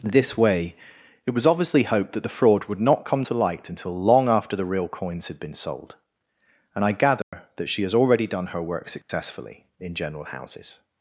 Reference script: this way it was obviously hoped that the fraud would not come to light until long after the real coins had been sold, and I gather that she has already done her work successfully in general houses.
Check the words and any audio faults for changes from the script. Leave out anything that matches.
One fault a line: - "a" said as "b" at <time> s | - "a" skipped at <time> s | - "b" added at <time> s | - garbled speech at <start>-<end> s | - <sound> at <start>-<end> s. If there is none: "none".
- dropout at 7.2-7.3 s
- dropout at 9.0-9.1 s